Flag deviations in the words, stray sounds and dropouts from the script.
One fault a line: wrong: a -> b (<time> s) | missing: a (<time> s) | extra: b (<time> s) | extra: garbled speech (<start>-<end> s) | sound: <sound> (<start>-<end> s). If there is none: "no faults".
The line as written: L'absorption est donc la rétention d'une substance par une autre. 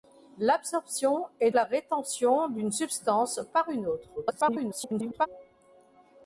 missing: donc (1.5 s)
extra: garbled speech (4.2-5.3 s)